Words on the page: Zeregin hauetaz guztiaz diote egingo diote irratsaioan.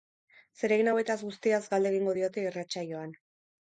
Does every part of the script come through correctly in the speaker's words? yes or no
no